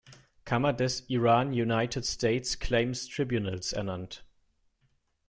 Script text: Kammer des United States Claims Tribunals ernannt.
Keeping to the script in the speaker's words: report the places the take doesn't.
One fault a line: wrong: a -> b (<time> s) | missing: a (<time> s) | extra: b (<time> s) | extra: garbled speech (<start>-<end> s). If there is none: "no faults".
extra: Iran (1.1 s)